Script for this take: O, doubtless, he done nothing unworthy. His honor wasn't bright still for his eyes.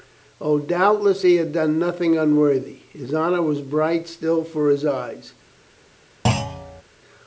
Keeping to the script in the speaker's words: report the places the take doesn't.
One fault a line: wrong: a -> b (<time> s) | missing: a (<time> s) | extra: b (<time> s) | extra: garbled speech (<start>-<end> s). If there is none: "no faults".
extra: had (1.4 s)
wrong: wasn't -> was (3.4 s)